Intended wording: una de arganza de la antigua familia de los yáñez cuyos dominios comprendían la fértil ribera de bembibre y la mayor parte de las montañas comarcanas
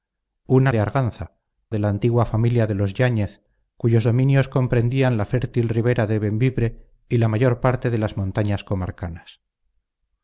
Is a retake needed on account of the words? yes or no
no